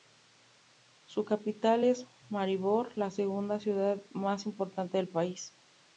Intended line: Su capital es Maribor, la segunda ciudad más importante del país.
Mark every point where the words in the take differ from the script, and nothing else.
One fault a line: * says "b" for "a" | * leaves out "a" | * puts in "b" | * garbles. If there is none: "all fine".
all fine